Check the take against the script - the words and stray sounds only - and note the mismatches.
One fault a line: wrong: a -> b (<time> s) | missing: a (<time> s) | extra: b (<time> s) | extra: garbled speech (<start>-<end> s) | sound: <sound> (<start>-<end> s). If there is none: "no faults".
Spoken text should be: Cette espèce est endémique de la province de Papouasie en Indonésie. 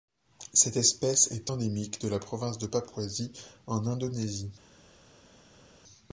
no faults